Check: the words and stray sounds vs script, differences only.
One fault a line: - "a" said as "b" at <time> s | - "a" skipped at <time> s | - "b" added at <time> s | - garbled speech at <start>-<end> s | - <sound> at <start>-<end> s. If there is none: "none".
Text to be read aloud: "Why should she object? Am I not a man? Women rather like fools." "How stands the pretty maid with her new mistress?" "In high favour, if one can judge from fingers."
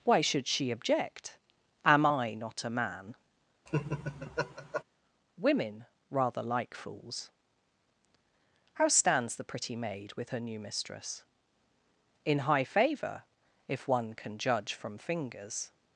- laugh at 3.7-4.8 s